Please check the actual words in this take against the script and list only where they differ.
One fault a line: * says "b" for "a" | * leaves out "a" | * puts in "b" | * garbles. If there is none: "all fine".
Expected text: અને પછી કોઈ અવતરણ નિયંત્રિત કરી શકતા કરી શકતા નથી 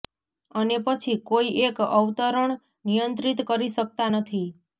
* puts in "એક"
* leaves out "કરી શકતા"